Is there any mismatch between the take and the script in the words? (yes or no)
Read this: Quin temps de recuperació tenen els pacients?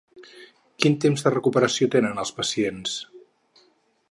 no